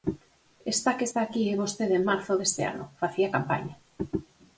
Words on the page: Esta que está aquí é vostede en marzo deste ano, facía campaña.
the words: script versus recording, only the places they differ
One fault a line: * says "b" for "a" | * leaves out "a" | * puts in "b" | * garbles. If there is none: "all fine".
all fine